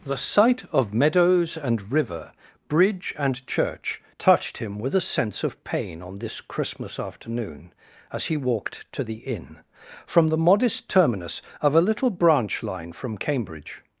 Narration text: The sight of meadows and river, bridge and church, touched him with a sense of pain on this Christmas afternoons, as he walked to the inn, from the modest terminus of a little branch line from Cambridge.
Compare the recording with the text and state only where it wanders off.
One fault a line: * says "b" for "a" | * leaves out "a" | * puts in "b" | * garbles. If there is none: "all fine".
* says "afternoon" for "afternoons"